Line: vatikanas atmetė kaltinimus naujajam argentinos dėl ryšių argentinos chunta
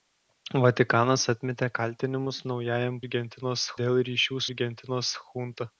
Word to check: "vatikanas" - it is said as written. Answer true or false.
true